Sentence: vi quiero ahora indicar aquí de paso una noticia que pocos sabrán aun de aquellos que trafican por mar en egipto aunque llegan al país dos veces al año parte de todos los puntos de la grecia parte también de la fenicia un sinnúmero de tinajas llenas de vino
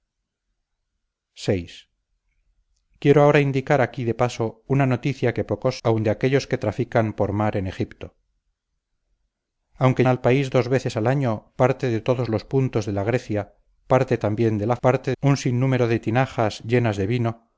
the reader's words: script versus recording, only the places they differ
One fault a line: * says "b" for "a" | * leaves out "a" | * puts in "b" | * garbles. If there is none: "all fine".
* leaves out "sabrán"
* leaves out "llegan"
* says "parte" for "fenicia"